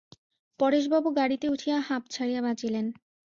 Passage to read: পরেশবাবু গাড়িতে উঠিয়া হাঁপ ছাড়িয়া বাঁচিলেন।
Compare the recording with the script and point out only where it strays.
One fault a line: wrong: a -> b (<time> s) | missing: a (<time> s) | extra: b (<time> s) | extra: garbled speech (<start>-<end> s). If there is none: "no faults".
no faults